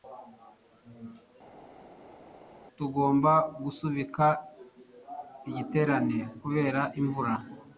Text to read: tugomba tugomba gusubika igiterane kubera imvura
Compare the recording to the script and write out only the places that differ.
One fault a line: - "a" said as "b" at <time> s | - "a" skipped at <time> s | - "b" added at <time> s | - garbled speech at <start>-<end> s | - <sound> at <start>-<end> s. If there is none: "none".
- "tugomba" skipped at 3.3 s